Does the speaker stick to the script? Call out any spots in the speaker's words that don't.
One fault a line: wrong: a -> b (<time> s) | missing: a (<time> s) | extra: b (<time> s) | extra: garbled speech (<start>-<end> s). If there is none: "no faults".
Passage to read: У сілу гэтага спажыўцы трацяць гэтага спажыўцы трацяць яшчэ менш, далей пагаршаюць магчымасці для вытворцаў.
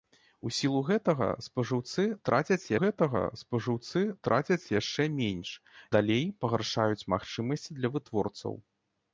no faults